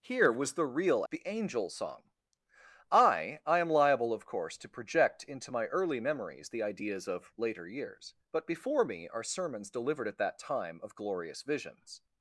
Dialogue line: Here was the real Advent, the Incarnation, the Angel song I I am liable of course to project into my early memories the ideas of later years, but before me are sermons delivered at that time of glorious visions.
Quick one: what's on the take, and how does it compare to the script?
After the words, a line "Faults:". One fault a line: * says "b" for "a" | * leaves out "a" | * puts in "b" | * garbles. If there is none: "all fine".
Here was the real The Angel song I I am liable of course to project into my early memories the ideas of later years, but before me are sermons delivered at that time of glorious visions.
Faults:
* leaves out "Advent the Incarnation"